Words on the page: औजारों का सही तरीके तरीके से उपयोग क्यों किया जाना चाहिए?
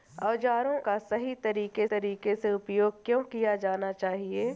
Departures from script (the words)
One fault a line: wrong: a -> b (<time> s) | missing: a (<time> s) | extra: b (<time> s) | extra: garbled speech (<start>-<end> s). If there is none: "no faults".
no faults